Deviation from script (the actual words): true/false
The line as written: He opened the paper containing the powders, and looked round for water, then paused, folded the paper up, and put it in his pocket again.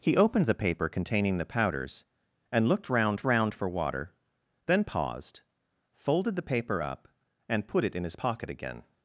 true